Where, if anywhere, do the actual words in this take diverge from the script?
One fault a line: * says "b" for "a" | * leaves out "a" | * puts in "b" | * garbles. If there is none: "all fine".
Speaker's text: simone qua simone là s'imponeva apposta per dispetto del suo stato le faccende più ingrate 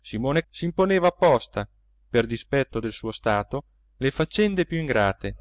* leaves out "qua simone là"